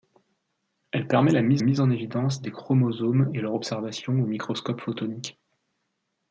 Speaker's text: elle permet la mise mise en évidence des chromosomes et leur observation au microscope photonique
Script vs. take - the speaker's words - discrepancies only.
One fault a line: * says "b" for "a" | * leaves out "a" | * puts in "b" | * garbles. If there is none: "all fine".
all fine